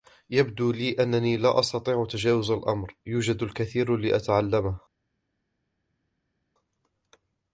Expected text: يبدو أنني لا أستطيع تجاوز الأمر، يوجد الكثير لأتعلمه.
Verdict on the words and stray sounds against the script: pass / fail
fail